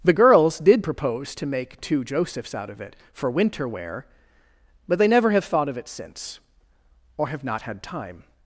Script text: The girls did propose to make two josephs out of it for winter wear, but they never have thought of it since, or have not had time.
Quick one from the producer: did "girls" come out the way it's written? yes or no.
yes